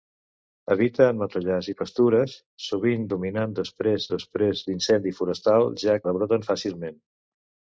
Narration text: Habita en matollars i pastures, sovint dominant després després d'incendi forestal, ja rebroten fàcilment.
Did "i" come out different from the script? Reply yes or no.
no